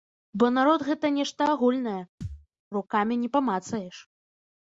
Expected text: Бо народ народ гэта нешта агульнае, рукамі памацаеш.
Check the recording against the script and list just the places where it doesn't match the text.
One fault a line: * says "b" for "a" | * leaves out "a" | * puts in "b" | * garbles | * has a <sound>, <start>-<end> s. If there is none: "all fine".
* leaves out "народ"
* has a thud, 2.2-2.5 s
* puts in "не"